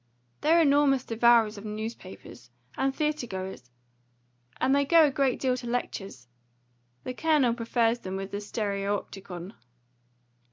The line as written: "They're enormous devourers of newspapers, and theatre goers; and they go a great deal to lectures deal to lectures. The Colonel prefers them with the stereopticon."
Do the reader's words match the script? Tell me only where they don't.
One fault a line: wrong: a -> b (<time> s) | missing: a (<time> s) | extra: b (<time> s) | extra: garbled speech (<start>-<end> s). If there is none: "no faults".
missing: deal to lectures (6.3 s)